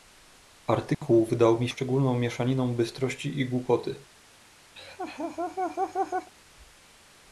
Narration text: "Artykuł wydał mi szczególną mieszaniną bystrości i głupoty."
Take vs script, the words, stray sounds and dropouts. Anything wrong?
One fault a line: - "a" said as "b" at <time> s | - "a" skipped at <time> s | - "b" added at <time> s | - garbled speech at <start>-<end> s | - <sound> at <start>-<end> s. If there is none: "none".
- dropout at 0.9-1.0 s
- laugh at 4.8-6.3 s